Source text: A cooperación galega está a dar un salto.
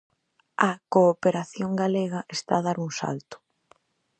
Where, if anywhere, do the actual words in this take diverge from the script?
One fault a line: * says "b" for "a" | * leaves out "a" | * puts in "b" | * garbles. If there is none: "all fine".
all fine